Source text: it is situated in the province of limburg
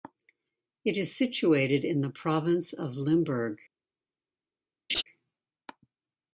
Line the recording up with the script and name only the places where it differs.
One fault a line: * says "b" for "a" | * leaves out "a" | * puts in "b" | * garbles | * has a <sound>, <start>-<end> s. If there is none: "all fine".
* has a laugh, 4.9-5.0 s